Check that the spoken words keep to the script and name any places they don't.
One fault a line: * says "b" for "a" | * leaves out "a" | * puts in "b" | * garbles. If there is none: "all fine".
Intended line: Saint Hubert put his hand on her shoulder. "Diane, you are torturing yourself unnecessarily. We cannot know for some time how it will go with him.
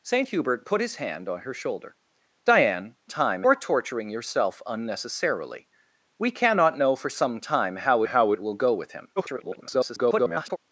* says "time" for "you"
* puts in "how"
* garbles